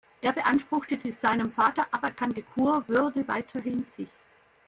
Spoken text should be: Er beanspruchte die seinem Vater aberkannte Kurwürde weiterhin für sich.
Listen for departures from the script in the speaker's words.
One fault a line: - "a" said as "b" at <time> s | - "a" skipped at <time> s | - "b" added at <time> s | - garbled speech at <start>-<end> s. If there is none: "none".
- "für" skipped at 3.9 s